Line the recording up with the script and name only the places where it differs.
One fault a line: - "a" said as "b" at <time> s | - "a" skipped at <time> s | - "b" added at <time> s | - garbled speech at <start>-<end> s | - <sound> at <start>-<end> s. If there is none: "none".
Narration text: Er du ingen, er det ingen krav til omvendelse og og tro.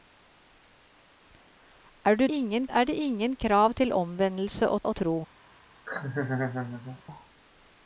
- laugh at 5.9-7.0 s